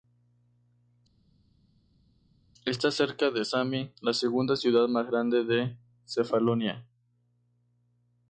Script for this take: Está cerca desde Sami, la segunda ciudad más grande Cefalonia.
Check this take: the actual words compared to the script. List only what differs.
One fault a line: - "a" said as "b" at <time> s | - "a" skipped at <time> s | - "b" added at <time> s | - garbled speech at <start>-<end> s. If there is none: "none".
- "desde" said as "de" at 3.3 s
- "de" added at 5.4 s